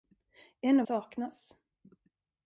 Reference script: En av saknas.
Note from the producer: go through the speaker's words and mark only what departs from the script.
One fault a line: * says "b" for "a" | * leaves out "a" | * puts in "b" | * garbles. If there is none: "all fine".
all fine